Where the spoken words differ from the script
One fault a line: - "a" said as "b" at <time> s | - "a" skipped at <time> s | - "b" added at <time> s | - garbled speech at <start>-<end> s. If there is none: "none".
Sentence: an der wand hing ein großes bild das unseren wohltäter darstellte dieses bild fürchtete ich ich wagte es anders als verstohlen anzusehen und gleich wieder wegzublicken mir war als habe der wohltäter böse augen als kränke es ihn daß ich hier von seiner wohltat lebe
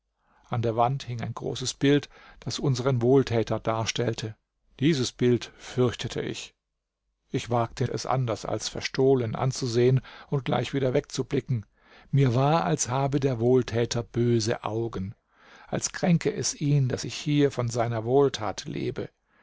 none